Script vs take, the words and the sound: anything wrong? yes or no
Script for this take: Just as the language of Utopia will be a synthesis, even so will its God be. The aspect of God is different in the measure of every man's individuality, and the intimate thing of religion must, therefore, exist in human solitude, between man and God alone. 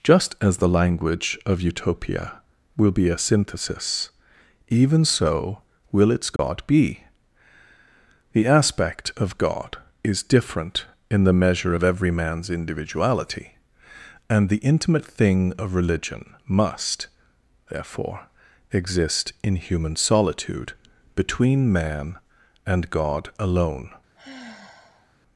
yes